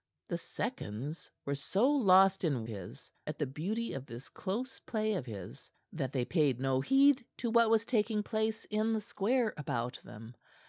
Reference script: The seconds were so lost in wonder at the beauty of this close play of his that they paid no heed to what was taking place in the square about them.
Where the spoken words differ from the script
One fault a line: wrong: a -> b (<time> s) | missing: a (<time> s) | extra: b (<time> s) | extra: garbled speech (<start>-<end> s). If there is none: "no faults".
wrong: wonder -> his (2.7 s)